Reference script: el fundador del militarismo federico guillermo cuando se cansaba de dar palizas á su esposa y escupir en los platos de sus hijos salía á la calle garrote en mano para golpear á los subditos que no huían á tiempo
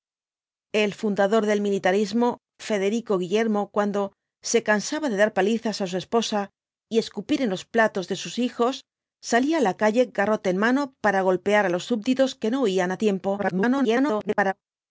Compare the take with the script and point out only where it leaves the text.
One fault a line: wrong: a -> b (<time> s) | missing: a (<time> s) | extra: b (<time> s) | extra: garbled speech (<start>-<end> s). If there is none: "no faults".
extra: garbled speech (13.4-14.5 s)